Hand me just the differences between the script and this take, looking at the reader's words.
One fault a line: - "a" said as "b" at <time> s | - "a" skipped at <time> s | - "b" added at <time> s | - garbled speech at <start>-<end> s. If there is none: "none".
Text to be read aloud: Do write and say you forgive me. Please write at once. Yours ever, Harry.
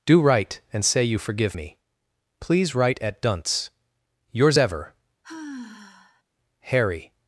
- "once" said as "dunce" at 3.2 s